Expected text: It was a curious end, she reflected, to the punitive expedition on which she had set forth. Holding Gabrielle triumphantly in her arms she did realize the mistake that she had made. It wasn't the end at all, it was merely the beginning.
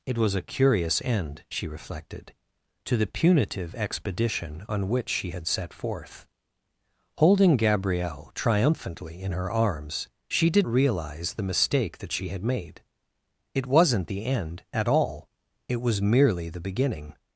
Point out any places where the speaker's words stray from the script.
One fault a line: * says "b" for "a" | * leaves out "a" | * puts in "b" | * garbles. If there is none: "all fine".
all fine